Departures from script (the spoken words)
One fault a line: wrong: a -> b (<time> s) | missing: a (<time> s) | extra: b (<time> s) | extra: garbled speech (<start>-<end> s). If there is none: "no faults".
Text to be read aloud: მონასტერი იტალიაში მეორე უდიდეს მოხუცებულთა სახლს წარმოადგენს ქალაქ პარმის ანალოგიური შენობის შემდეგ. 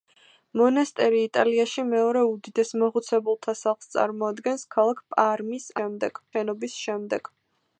wrong: ანალოგიური -> შემდეგ (5.8 s)